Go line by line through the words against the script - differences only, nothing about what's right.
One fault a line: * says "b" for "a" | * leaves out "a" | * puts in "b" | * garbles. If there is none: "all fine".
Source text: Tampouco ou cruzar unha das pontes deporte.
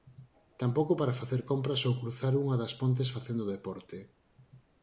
* puts in "para facer compras"
* puts in "facendo"